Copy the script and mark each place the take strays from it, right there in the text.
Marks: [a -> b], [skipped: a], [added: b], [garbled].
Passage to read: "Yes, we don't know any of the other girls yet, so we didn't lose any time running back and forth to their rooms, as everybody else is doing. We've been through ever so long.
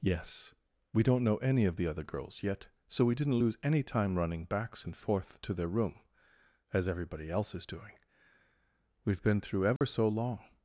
"Yes, we don't know any of the other girls yet, so we didn't lose any time running [back -> backs] and forth to their [rooms, -> room] as everybody else is doing. We've been through ever so long.